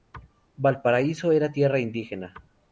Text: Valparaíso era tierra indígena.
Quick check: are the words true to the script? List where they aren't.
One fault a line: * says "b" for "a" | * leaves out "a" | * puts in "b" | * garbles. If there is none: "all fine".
all fine